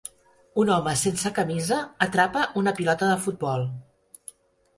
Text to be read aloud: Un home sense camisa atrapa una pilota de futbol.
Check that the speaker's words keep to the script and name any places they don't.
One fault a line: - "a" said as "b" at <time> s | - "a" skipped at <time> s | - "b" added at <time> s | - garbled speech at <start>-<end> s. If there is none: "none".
none